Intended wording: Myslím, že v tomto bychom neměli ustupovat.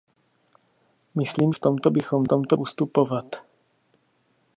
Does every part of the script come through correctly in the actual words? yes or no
no